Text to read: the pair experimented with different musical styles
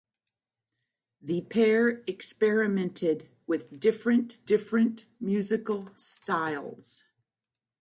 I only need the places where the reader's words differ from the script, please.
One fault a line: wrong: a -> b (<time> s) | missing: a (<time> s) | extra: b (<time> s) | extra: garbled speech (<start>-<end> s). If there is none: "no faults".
extra: different (4.5 s)